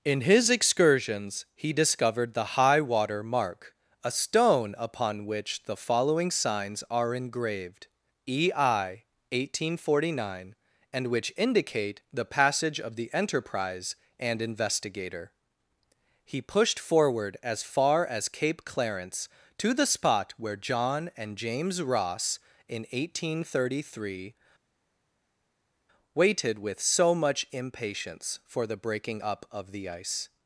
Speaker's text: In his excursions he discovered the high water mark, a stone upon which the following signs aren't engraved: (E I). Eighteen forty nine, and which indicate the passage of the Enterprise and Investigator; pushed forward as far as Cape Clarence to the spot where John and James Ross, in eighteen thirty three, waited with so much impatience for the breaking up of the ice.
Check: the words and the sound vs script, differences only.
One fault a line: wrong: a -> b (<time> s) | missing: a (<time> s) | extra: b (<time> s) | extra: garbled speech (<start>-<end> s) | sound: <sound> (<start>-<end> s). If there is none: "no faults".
wrong: aren't -> are (6.9 s)
extra: he (16.2 s)